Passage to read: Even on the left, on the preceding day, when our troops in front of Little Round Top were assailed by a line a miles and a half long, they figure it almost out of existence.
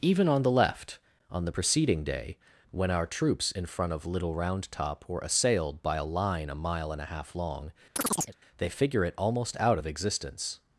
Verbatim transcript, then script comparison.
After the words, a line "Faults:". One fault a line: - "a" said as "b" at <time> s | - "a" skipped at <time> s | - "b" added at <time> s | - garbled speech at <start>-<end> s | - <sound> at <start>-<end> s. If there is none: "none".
Even on the left, on the preceding day, when our troops in front of Little Round Top were assailed by a line a mile and a half long, they figure it almost out of existence.
Faults:
- "miles" said as "mile" at 6.5 s
- chirp at 8.0-8.4 s